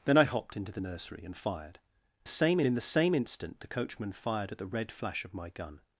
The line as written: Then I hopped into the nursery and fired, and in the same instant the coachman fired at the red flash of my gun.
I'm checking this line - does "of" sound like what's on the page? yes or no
yes